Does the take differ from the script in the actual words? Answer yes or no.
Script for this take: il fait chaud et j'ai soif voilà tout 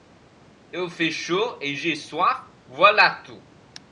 no